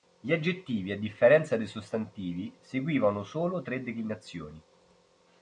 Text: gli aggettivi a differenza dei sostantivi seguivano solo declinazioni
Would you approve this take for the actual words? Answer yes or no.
no